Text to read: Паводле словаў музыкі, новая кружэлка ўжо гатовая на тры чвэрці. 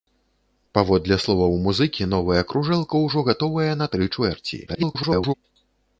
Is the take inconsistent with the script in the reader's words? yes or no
yes